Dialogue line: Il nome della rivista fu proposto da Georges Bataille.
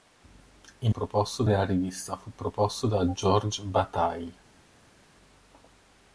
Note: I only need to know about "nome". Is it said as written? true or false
false